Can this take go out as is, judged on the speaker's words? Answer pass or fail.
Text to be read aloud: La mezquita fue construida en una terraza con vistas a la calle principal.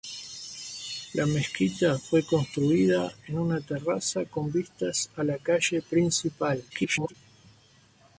fail